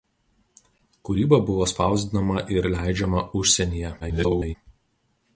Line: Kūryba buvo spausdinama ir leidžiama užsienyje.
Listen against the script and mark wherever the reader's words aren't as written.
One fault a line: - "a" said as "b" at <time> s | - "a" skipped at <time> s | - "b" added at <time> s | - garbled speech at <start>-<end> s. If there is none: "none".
- garbled speech at 4.0-4.6 s